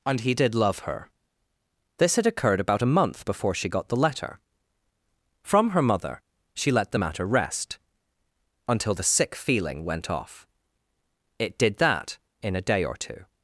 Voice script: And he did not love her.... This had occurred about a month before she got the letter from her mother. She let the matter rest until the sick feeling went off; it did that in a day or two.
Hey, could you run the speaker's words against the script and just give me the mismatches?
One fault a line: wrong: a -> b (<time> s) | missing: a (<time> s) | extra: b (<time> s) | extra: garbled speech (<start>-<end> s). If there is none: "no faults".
missing: not (0.6 s)